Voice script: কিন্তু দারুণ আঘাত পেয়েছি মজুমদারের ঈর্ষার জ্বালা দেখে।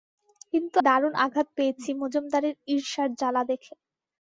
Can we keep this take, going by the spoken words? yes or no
yes